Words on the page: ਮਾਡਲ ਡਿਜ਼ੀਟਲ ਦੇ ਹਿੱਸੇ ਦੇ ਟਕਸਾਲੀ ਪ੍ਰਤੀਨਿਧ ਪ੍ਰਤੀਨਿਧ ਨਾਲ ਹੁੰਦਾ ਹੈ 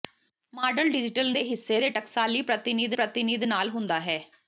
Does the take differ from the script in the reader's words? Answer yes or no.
no